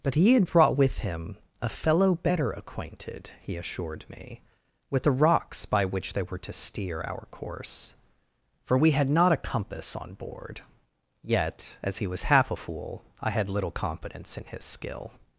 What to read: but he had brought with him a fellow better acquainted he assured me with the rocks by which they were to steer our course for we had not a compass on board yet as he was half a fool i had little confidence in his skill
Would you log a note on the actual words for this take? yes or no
no